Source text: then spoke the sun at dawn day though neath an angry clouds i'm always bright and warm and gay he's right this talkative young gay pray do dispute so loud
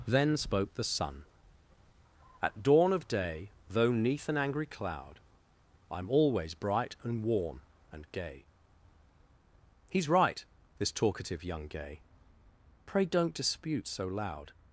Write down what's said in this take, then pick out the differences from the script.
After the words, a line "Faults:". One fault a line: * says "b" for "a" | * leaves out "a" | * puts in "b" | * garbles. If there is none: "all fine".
then spoke the sun at dawn of day though neath an angry cloud i'm always bright and warm and gay he's right this talkative young gay pray don't dispute so loud
Faults:
* puts in "of"
* says "cloud" for "clouds"
* says "don't" for "do"